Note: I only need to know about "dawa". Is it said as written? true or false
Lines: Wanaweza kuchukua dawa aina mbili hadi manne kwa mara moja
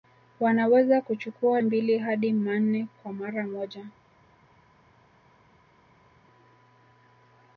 false